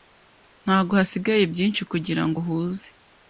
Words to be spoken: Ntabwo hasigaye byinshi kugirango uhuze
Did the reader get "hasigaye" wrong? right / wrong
right